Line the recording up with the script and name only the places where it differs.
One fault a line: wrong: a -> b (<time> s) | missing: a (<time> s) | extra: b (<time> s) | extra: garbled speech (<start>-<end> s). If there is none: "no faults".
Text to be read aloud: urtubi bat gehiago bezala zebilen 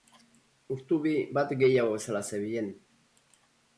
no faults